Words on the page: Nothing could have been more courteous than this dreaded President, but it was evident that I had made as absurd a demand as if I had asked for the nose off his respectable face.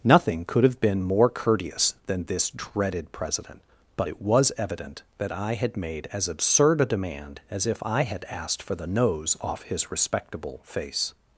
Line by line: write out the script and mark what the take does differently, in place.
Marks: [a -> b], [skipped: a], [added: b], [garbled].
Nothing could have been more courteous than this dreaded President, but it was evident that I had made as absurd a demand as if I had asked for the nose off his respectable face.